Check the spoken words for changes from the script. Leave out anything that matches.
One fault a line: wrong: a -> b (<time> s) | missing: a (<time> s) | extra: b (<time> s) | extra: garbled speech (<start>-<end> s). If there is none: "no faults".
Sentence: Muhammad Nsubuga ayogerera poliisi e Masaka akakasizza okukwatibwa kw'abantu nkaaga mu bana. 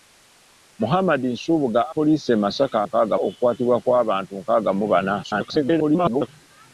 missing: ayogerera (1.8 s)
wrong: akakasizza -> nkaaga (2.9 s)
extra: garbled speech (5.2-6.3 s)